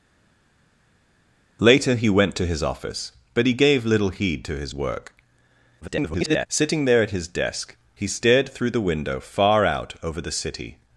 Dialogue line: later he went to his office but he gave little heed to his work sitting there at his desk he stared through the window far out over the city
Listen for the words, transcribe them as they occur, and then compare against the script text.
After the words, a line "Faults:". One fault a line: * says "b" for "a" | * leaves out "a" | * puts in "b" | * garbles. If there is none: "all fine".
later he went to his office but he gave little heed to his work [garbled] sitting there at his desk he stared through the window far out over the city
Faults:
* garbles